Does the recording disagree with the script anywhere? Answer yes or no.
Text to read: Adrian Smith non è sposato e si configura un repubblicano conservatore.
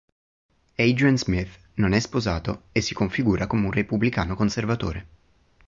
yes